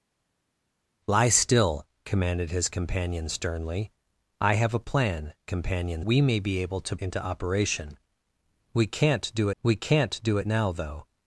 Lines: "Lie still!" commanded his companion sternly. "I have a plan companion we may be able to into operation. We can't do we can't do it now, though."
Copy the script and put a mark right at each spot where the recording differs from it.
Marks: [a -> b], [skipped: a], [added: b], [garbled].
"Lie still!" commanded his companion sternly. "I have a plan companion we may be able to into operation. We can't do we can't do it now, though."